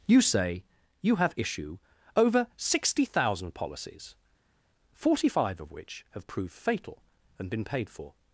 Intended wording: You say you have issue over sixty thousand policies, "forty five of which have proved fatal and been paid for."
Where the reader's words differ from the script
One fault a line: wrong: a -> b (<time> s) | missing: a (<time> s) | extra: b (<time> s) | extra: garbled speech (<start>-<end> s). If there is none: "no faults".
no faults